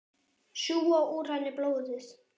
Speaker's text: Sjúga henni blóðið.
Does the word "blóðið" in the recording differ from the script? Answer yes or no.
no